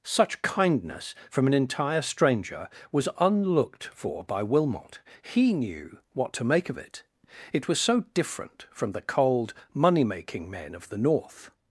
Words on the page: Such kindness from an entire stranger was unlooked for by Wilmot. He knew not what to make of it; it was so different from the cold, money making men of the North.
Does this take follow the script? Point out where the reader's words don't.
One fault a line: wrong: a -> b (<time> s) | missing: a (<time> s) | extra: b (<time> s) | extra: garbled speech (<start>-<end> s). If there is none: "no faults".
missing: not (6.0 s)